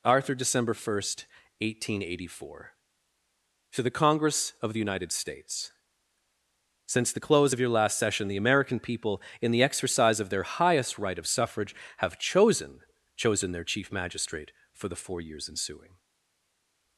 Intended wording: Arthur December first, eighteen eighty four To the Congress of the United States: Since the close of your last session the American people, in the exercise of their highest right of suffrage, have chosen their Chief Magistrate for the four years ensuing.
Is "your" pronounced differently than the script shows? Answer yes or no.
no